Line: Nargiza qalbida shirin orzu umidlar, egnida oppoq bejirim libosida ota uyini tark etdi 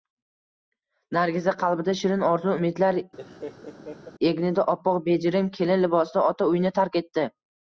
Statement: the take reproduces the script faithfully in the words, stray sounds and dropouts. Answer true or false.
false